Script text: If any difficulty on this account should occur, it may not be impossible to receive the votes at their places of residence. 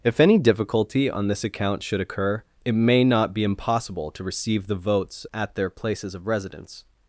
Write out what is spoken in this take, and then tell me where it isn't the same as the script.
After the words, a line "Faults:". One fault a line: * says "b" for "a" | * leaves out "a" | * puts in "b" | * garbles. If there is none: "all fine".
If any difficulty on this account should occur, it may not be impossible to receive the votes at their places of residence.
Faults:
all fine